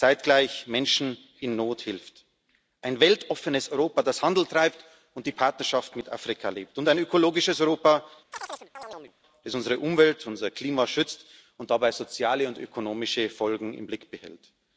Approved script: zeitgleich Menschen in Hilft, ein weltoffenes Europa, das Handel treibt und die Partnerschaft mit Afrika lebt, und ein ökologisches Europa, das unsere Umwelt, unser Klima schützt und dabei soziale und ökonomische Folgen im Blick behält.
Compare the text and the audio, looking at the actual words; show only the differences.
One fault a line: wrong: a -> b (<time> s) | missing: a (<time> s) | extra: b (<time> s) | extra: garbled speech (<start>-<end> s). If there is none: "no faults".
extra: Not (1.6 s)